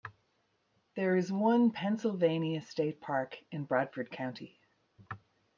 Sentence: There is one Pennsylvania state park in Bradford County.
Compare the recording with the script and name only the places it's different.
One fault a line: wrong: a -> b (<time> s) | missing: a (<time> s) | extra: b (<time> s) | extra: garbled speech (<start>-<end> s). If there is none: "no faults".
no faults